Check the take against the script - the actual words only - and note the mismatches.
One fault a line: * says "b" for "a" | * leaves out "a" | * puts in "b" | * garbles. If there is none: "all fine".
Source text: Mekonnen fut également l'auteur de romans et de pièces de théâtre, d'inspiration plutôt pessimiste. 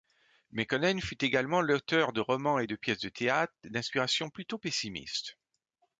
all fine